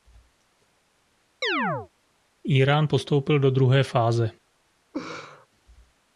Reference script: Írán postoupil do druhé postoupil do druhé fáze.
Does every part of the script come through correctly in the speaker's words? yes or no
no